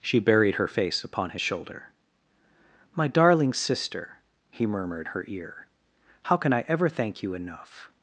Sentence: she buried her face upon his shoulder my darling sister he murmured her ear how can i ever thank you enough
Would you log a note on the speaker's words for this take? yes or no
no